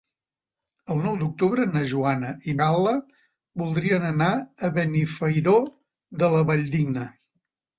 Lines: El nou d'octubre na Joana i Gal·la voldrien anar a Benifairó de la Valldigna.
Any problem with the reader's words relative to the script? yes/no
no